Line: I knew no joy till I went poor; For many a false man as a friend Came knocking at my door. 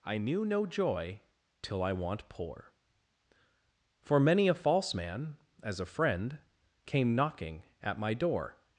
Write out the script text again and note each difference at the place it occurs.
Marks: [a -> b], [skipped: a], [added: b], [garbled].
I knew no joy till I [went -> want] poor; For many a false man as a friend Came knocking at my door.